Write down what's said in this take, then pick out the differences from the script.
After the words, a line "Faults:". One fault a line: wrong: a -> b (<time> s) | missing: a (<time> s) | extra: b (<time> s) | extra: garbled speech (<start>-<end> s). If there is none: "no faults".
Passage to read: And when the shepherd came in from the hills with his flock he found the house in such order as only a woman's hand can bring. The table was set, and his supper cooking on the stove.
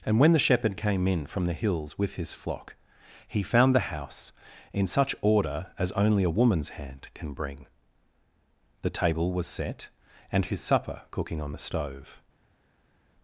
And when the shepherd came in from the hills with his flock he found the house in such order as only a woman's hand can bring. The table was set, and his supper cooking on the stove.
Faults:
no faults